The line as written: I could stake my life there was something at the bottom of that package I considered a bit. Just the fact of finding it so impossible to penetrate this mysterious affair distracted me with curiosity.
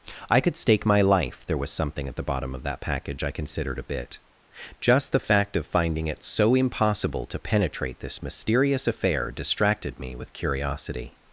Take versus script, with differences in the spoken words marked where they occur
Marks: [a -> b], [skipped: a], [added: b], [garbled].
I could stake my life there was something at the bottom of that package I considered a bit. Just the fact of finding it so impossible to penetrate this mysterious affair distracted me with curiosity.